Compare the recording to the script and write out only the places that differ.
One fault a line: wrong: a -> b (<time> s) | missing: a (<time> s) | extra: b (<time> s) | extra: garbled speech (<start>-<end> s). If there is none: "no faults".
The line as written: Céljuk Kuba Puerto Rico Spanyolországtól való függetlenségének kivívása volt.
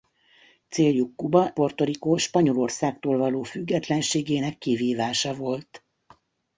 no faults